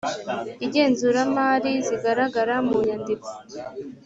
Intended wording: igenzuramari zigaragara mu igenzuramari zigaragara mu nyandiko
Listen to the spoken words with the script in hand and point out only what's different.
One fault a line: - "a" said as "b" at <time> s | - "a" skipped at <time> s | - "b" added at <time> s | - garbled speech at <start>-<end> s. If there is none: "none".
- "igenzuramari zigaragara mu" skipped at 2.8 s